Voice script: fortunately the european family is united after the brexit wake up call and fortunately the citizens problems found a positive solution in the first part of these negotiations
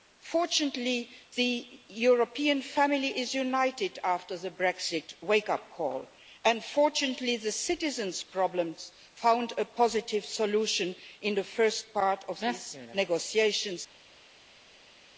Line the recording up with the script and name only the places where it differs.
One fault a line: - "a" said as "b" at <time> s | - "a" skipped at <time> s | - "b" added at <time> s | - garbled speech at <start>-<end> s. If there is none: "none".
none